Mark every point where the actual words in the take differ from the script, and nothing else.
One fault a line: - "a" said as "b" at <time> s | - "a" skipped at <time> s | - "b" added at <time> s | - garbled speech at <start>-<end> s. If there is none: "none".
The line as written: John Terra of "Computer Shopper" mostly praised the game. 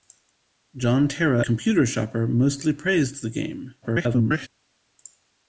- "of" skipped at 1.4 s
- garbled speech at 3.8-4.5 s